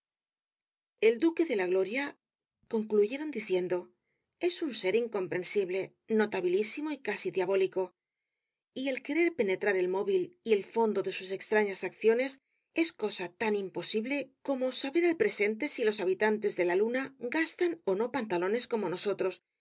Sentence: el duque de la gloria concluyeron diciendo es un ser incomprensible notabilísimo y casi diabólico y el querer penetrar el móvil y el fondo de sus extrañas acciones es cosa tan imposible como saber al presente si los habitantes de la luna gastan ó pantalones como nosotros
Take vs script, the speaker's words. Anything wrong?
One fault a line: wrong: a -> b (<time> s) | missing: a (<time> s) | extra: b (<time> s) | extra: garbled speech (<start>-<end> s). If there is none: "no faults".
extra: no (18.0 s)